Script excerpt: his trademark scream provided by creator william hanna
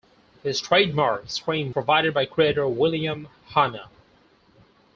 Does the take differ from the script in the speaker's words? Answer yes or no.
no